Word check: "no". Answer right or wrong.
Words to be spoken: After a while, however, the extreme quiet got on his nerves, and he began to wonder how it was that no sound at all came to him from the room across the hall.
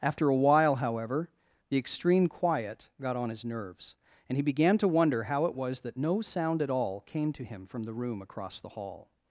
right